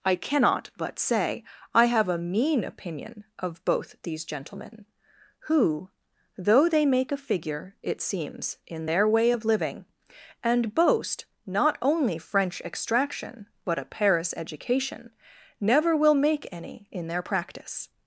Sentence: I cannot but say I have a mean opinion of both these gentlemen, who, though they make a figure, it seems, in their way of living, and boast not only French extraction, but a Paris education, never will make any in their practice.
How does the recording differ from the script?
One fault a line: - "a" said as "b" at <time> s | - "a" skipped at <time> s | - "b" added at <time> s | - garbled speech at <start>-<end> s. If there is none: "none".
none